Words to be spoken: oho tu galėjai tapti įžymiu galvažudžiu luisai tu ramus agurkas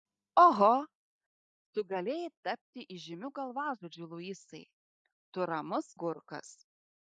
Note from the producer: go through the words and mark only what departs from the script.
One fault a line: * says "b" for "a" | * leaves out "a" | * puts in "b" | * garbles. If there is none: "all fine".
all fine